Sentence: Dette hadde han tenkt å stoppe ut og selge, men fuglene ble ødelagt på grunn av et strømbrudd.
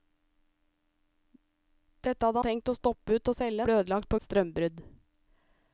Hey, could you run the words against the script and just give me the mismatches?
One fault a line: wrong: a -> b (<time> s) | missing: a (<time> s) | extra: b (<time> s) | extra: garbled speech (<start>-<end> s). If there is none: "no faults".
missing: han (2.4 s)
missing: men fuglene (3.7 s)
missing: grunn av (4.2 s)